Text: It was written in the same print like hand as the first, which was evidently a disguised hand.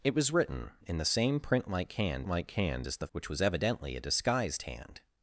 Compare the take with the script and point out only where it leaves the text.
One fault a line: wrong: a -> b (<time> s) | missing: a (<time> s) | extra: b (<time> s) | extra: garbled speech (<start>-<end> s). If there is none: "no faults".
extra: like hand (2.3 s)
missing: first (3.1 s)